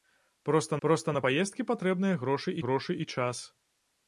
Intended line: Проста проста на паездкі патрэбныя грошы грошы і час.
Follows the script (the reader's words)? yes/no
yes